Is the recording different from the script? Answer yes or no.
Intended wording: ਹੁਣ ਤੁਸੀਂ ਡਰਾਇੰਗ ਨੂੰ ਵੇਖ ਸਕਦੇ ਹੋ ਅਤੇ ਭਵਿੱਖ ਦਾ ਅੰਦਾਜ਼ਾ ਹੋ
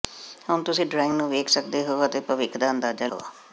no